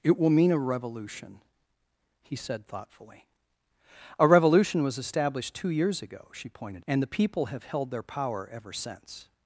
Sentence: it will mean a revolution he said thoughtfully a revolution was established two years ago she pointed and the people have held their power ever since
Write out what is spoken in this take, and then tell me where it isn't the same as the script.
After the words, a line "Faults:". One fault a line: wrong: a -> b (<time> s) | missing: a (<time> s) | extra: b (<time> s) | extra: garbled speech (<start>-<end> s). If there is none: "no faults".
it will mean a revolution he said thoughtfully a revolution was established two years ago she pointed and the people have held their power ever since
Faults:
no faults